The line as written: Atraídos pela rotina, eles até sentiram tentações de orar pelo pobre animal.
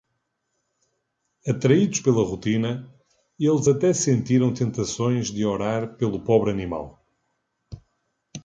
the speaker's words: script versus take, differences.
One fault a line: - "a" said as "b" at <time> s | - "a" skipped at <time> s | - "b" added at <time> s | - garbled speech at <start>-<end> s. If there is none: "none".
none